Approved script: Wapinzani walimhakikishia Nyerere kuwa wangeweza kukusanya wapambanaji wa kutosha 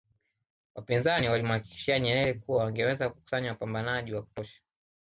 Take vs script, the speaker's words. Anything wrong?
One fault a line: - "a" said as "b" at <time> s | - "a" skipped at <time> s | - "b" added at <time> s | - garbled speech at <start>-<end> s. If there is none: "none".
none